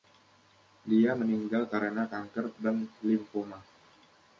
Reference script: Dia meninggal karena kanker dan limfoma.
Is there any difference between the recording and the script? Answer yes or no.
no